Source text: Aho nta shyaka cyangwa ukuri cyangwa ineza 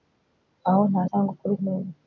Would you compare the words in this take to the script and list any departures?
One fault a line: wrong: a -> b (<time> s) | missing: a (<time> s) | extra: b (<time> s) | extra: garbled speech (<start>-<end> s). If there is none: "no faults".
missing: shyaka (1.0 s)
missing: cyangwa (1.5 s)